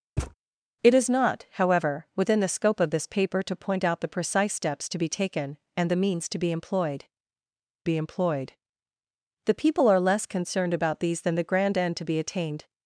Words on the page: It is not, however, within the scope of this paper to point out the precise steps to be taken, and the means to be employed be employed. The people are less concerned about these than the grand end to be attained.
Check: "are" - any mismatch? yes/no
no